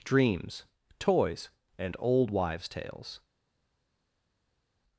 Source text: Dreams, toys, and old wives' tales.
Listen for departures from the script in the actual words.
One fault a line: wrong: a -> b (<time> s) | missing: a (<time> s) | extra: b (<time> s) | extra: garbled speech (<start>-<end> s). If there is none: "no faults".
no faults